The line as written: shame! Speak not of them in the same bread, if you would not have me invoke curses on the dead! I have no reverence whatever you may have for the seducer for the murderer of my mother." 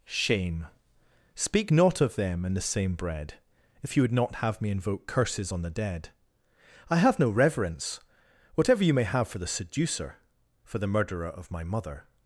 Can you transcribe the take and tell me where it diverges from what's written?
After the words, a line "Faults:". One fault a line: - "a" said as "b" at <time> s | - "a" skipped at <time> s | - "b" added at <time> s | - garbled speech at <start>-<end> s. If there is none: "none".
shame! Speak not of them in the same bread, if you would not have me invoke curses on the dead! I have no reverence whatever you may have for the seducer for the murderer of my mother."
Faults:
none